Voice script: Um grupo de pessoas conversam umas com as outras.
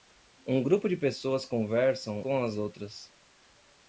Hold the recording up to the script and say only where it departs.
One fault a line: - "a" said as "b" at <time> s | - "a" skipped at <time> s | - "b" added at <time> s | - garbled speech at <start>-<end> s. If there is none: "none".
- "umas" skipped at 2.2 s